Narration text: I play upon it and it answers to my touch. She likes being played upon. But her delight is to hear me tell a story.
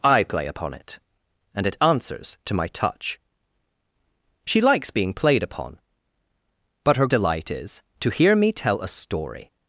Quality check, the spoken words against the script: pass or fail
pass